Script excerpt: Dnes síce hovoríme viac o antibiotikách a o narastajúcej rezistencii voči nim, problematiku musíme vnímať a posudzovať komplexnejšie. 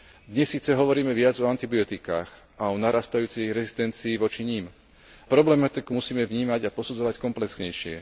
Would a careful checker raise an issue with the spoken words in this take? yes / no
no